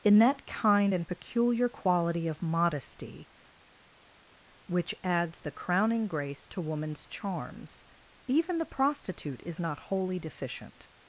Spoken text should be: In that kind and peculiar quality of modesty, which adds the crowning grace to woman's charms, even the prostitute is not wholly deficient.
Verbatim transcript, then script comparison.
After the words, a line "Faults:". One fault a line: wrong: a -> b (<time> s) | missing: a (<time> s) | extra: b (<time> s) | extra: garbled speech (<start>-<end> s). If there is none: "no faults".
In that kind and peculiar quality of modesty, which adds the crowning grace to woman's charms, even the prostitute is not wholly deficient.
Faults:
no faults